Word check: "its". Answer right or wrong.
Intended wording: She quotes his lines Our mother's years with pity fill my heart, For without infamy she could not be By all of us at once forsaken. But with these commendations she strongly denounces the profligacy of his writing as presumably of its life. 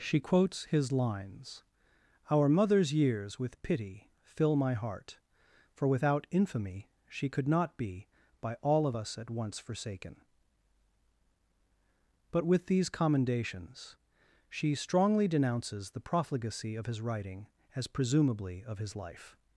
wrong